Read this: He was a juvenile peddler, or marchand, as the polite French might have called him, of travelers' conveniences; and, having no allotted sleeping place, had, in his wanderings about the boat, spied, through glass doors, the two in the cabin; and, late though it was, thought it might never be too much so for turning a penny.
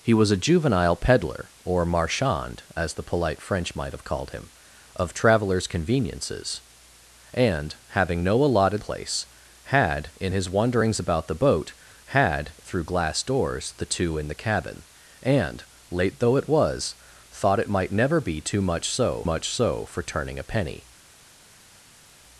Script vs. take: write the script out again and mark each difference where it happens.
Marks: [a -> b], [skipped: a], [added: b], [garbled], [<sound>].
He was a juvenile peddler, or marchand, as the polite French might have called him, of travelers' conveniences; and, having no allotted [skipped: sleeping] place, had, in his wanderings about the boat, [spied, -> had] through glass doors, the two in the cabin; and, late though it was, thought it might never be too much so [added: much so] for turning a penny.